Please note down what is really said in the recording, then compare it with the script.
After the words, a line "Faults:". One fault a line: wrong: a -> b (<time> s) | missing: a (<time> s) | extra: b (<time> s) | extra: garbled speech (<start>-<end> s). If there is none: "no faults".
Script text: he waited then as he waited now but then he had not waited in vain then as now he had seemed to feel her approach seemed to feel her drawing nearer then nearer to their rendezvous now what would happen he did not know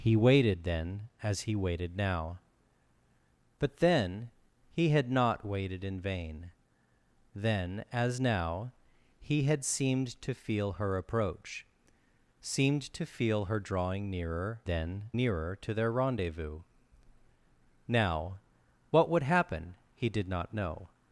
he waited then as he waited now but then he had not waited in vain then as now he had seemed to feel her approach seemed to feel her drawing nearer then nearer to their rendezvous now what would happen he did not know
Faults:
no faults